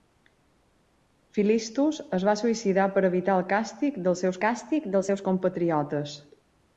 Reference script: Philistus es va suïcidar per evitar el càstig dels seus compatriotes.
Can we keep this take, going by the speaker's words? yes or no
no